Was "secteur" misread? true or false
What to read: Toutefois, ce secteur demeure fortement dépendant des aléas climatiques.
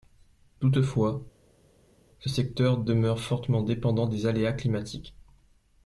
false